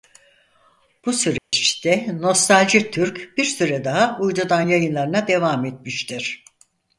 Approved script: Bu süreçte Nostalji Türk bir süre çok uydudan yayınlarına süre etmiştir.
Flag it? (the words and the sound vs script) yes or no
yes